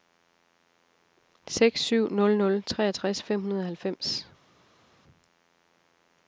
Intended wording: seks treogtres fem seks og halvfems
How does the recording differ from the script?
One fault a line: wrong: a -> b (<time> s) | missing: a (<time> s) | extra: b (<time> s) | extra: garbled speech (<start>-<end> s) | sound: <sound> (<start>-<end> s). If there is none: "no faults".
extra: syv nul nul (1.8 s)
wrong: seks -> hundrede (3.4 s)